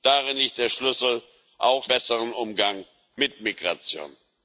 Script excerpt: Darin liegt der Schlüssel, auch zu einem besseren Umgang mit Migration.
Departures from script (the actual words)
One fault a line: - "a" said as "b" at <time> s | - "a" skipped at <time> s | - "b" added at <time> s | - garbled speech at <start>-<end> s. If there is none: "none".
- "zu einem" skipped at 1.9 s